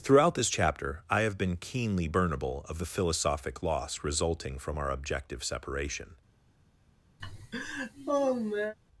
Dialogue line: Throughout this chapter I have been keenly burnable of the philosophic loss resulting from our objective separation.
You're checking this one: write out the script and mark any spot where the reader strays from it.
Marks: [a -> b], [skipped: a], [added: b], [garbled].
Throughout this chapter I have been keenly burnable of the philosophic loss resulting from our objective separation.